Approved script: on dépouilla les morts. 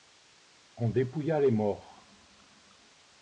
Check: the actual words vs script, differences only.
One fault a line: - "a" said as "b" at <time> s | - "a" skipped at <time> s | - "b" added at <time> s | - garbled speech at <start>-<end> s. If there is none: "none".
none